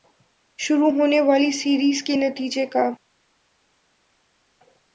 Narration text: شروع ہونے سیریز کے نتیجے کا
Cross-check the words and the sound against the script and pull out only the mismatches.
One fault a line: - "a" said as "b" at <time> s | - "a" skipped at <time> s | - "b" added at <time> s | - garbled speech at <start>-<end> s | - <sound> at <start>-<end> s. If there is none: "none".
- "والی" added at 1.2 s